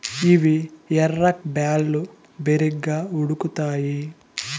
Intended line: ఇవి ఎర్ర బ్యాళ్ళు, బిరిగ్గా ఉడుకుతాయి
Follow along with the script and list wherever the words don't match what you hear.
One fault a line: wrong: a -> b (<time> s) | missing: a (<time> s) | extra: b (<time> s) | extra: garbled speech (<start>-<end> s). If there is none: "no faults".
no faults